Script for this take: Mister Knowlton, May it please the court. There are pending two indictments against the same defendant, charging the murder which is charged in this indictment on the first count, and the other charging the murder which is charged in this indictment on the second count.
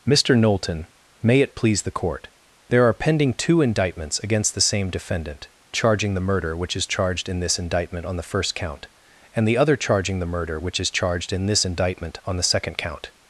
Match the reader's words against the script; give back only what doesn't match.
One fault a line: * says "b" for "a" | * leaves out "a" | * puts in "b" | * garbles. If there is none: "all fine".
all fine